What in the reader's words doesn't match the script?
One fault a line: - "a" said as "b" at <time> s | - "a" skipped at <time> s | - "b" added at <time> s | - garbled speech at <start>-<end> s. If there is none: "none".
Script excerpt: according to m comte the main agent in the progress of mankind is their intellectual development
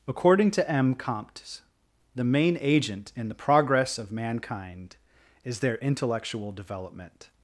none